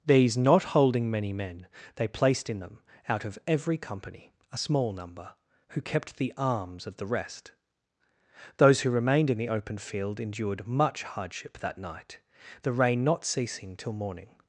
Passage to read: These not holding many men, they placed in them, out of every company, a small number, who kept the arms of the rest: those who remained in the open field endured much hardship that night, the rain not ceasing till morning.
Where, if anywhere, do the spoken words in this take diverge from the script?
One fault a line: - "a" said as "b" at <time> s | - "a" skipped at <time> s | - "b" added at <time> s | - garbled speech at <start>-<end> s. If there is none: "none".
none